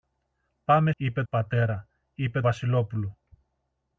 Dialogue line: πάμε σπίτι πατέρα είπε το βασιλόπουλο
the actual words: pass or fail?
fail